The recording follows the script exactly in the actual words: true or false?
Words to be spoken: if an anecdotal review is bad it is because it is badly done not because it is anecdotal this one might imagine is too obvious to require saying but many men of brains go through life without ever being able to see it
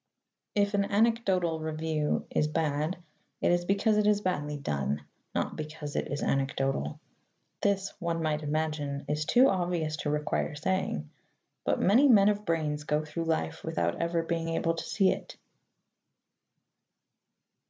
true